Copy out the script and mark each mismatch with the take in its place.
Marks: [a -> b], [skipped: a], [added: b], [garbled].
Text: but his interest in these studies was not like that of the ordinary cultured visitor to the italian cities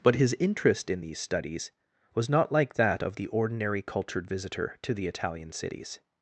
but his interest in these studies was not like that of the ordinary cultured visitor to the italian cities